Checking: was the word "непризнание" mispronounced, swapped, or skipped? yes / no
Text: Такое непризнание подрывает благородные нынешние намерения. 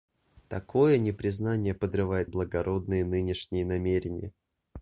no